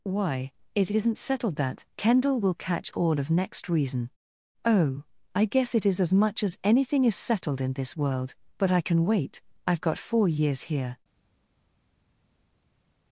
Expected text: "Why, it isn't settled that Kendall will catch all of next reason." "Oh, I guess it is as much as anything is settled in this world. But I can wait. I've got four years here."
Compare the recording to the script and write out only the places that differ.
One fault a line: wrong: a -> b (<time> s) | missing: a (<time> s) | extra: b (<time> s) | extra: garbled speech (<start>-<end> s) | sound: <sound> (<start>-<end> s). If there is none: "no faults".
no faults